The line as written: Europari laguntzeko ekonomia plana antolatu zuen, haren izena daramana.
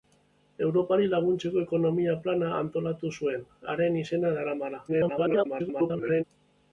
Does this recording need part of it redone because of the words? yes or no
yes